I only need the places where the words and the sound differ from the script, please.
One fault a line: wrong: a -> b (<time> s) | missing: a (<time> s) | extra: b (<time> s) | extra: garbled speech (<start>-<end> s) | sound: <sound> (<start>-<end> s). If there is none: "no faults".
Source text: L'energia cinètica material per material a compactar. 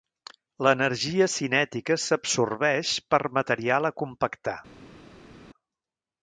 wrong: material -> s'absorbeix (2.0 s)